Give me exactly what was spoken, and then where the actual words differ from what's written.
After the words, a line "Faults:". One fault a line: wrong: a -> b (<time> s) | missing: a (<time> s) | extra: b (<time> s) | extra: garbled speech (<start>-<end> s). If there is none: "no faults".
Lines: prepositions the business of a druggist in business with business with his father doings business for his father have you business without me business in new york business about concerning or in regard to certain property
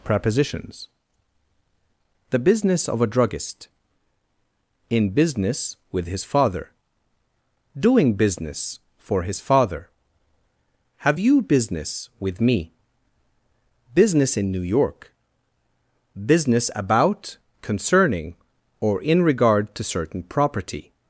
prepositions the business of a druggist in business with his father doing business for his father have you business with me business in new york business about concerning or in regard to certain property
Faults:
missing: business with (6.1 s)
wrong: doings -> doing (7.8 s)
wrong: without -> with (12.2 s)